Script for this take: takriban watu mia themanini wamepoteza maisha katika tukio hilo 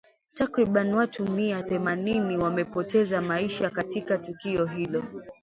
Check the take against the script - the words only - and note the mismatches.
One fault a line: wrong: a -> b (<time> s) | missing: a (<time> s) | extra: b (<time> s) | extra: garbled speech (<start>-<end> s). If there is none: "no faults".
no faults